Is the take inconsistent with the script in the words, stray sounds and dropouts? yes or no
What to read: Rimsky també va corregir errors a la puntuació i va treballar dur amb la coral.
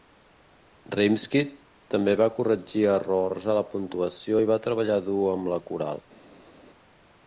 no